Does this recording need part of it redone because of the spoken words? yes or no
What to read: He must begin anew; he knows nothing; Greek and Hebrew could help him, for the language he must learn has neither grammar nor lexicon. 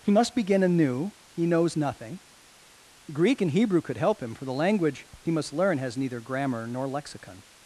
no